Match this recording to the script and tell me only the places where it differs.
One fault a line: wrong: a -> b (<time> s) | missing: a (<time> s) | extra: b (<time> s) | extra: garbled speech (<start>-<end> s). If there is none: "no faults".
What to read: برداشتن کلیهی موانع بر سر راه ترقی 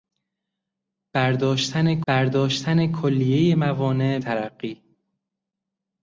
extra: برداشتن (2.1 s)
missing: بر سر راه (4.2 s)